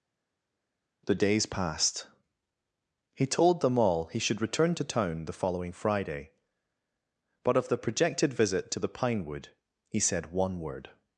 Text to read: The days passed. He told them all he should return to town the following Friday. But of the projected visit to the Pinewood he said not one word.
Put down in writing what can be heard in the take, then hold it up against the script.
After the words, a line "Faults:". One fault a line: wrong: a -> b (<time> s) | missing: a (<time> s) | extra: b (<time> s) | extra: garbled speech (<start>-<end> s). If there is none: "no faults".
The days passed. He told them all he should return to town the following Friday. But of the projected visit to the Pinewood he said one word.
Faults:
missing: not (10.3 s)